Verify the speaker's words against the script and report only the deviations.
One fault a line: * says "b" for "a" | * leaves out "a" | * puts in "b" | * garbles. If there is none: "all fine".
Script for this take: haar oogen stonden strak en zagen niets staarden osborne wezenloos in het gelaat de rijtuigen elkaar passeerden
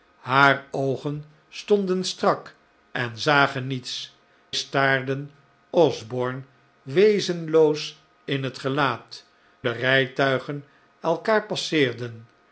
all fine